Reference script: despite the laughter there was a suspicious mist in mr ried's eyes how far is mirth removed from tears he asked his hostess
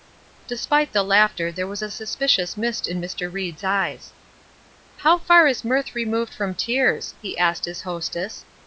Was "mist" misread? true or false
false